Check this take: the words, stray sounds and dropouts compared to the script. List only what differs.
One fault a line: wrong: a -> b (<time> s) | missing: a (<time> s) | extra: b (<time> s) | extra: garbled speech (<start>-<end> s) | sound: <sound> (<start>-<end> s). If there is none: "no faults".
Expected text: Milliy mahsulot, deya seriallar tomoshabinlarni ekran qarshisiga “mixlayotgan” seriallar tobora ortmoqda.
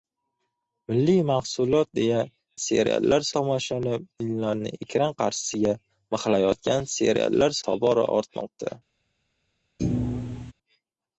sound: thud (9.8-10.5 s)